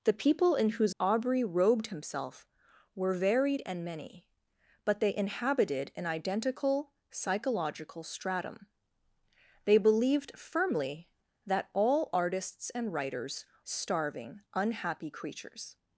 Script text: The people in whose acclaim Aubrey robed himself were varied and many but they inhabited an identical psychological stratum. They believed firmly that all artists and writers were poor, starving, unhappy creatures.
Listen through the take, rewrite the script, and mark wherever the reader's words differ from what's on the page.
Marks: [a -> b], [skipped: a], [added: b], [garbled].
The people in whose [skipped: acclaim] Aubrey robed himself were varied and many but they inhabited an identical psychological stratum. They believed firmly that all artists and writers [skipped: were poor,] starving, unhappy creatures.